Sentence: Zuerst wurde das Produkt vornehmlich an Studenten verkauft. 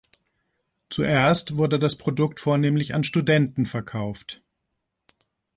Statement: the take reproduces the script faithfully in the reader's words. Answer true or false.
true